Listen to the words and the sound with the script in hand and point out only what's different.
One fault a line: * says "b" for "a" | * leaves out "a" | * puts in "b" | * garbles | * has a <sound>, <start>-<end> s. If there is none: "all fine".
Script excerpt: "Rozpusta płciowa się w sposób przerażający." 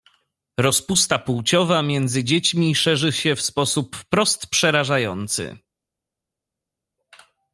* puts in "między dziećmi szerzy"
* puts in "wprost"